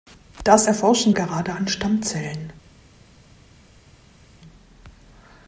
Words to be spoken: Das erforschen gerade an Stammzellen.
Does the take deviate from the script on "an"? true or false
false